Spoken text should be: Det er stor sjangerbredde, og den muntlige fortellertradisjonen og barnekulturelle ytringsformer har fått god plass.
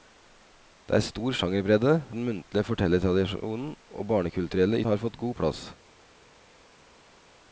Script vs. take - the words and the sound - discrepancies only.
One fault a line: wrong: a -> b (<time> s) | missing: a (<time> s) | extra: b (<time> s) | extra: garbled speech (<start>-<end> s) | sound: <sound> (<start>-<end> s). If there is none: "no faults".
missing: og (2.0 s)
missing: ytringsformer (4.8 s)